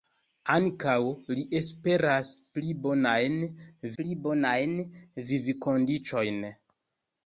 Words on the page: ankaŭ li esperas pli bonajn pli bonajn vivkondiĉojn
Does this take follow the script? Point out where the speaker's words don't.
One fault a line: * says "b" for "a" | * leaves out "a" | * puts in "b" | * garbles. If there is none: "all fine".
all fine